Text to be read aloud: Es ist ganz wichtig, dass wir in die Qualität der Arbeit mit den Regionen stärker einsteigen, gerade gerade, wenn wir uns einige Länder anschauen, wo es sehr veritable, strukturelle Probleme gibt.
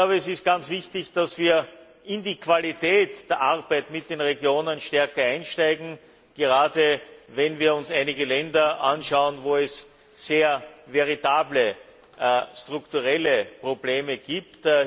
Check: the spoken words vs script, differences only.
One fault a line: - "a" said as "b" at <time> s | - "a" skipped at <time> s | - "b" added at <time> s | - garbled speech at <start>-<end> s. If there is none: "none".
- "gerade" skipped at 7.0 s